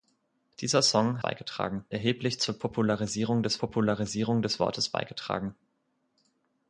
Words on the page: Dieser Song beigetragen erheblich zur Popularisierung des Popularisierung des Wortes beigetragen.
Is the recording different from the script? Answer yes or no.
no